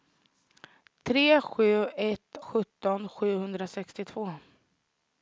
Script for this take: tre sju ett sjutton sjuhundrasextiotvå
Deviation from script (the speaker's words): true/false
false